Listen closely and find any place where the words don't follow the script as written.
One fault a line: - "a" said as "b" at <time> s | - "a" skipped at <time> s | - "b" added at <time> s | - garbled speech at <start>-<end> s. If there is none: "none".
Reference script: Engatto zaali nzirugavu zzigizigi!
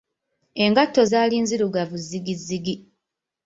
none